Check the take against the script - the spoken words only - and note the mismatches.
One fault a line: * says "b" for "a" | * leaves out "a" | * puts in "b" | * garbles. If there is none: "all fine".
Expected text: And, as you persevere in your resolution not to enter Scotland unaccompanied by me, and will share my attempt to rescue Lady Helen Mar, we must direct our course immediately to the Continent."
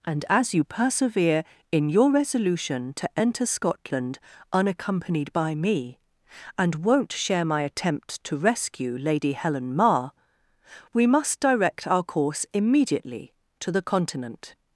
* leaves out "not"
* says "won't" for "will"